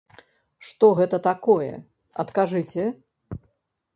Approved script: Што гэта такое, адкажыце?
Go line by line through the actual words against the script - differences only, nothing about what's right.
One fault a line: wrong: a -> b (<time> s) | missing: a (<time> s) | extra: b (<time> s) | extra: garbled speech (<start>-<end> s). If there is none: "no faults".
no faults